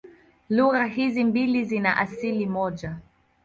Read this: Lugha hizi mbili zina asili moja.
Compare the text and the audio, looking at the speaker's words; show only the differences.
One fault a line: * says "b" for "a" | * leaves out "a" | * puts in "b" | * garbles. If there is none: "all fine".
all fine